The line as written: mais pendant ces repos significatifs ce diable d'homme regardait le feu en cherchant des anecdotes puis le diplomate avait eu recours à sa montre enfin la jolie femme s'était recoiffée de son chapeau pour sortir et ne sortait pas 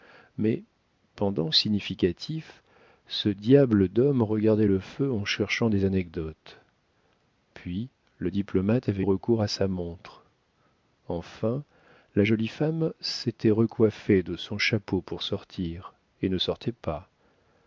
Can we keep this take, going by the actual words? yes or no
no